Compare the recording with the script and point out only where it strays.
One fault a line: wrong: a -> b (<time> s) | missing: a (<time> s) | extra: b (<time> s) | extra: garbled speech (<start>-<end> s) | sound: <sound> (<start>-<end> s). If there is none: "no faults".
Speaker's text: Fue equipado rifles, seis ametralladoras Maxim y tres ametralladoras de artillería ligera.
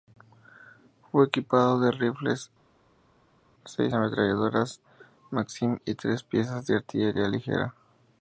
extra: de (1.8 s)
wrong: ametralladoras -> piezas (6.2 s)